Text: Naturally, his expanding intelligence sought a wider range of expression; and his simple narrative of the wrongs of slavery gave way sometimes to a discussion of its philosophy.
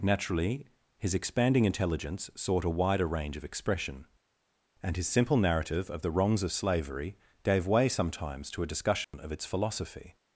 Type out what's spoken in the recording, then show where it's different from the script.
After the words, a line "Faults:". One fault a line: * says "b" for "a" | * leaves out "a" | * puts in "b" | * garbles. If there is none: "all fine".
Naturally, his expanding intelligence sought a wider range of expression; and his simple narrative of the wrongs of slavery gave way sometimes to a discussion of its philosophy.
Faults:
all fine